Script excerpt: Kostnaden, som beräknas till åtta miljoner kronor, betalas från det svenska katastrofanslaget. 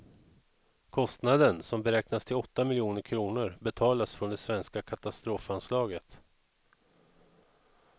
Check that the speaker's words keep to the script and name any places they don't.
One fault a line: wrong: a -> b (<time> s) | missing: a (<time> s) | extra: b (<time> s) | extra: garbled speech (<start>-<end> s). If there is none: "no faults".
no faults